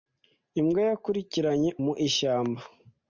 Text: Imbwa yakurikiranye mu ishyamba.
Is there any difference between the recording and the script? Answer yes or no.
no